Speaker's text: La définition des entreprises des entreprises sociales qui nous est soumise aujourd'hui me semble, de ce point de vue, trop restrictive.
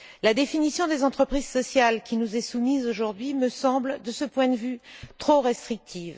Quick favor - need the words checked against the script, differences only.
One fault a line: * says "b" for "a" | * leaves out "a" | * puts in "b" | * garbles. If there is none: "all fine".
* leaves out "des entreprises"